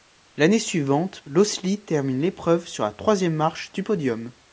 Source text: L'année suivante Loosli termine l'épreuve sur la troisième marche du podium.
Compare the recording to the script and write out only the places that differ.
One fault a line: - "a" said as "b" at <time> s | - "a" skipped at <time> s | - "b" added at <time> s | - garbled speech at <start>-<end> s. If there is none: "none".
none